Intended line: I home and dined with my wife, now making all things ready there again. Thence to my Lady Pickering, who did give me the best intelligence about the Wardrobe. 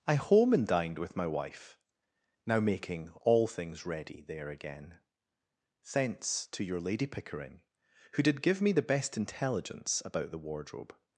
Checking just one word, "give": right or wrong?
right